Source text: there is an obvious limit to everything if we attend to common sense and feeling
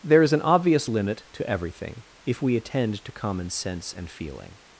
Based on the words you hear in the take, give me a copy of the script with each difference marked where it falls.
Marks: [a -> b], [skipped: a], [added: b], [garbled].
there is an obvious limit to everything if we attend to common sense and feeling